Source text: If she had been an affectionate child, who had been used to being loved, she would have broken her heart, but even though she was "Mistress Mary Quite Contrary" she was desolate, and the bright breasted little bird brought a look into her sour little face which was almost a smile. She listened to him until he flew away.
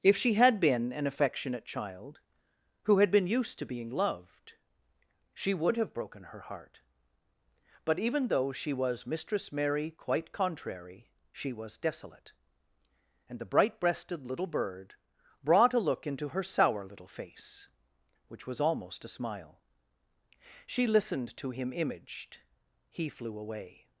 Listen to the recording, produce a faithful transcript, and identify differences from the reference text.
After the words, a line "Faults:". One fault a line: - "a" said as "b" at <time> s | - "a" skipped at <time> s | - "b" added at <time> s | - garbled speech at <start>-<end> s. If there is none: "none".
If she had been an affectionate child, who had been used to being loved, she would have broken her heart, but even though she was "Mistress Mary Quite Contrary" she was desolate, and the bright breasted little bird brought a look into her sour little face which was almost a smile. She listened to him imaged he flew away.
Faults:
- "until" said as "imaged" at 21.7 s